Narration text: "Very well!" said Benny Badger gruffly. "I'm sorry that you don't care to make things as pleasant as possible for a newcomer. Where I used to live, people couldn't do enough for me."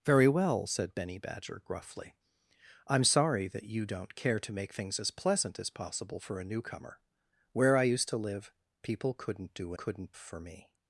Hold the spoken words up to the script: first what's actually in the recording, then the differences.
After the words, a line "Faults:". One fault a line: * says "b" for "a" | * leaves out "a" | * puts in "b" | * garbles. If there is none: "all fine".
"Very well!" said Benny Badger gruffly. "I'm sorry that you don't care to make things as pleasant as possible for a newcomer. Where I used to live, people couldn't do couldn't for me."
Faults:
* says "couldn't" for "enough"